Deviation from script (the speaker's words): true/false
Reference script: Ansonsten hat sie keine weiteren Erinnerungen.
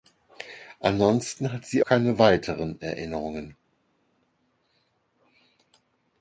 false